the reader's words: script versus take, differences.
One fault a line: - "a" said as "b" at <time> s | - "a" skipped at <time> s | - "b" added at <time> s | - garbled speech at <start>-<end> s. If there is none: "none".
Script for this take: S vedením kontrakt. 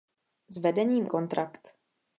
none